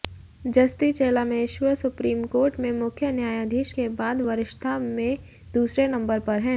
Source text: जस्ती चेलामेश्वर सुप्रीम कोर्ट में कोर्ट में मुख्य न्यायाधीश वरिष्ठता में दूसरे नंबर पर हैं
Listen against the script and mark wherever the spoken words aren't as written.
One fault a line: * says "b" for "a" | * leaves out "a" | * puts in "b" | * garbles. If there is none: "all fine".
* says "मुख्य न्यायाधीश के बाद" for "कोर्ट में मुख्य न्यायाधीश"